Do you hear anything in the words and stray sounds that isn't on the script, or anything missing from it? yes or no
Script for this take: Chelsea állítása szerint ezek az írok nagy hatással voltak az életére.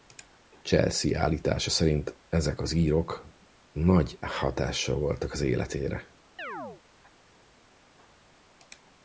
yes